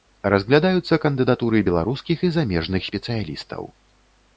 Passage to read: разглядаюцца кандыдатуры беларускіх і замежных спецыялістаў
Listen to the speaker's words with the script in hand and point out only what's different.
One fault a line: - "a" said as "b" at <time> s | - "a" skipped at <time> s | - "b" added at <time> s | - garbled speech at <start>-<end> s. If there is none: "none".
none